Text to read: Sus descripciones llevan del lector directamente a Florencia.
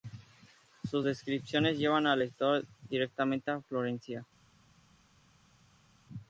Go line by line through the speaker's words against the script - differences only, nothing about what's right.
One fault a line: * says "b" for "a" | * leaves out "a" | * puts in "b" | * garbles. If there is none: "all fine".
* says "al" for "del"